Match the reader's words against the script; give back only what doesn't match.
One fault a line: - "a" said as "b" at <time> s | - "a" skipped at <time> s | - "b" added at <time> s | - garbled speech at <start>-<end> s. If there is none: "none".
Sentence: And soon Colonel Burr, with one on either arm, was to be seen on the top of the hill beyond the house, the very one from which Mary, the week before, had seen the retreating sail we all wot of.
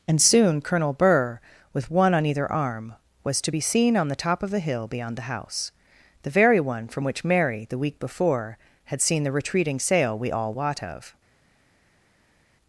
none